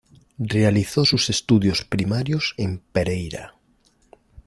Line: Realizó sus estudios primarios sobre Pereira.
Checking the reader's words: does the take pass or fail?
fail